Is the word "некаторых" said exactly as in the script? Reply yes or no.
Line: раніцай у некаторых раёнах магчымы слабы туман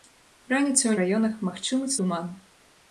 no